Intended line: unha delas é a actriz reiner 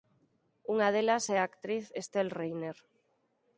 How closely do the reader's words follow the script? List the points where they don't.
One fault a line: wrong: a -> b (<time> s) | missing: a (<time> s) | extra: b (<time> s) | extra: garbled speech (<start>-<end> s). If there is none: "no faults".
extra: estelle (2.0 s)